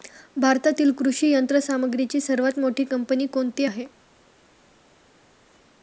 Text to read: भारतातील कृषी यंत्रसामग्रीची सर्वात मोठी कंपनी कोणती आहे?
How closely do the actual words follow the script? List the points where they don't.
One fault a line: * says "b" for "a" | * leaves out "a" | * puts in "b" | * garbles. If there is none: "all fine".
all fine